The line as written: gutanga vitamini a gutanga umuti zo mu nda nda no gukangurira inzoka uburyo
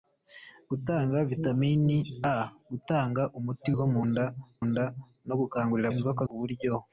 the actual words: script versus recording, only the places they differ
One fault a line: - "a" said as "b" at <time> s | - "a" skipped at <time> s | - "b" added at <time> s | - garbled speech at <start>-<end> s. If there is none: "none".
none